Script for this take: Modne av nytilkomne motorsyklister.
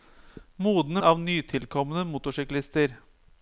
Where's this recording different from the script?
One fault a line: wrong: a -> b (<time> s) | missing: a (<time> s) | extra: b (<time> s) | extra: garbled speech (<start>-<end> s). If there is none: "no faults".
no faults